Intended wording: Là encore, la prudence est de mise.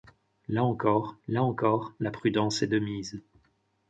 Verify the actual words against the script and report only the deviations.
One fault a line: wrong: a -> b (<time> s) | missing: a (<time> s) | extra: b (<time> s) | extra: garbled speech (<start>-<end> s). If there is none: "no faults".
extra: là encore (1.3 s)